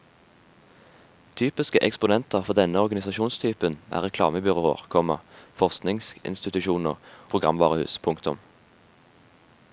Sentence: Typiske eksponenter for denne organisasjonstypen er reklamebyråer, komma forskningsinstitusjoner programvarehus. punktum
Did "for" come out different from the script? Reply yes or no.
no